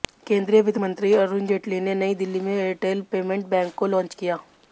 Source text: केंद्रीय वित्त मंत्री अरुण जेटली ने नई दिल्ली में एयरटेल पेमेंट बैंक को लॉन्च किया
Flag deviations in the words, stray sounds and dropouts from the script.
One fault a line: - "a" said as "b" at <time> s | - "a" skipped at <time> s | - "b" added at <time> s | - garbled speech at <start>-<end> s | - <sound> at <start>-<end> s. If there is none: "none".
none